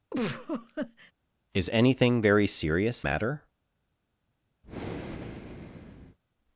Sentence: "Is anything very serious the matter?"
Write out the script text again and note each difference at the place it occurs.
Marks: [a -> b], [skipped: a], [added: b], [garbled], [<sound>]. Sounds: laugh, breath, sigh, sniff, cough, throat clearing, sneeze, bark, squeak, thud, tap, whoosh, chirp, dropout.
[laugh] "Is anything very serious [skipped: the] matter?" [breath]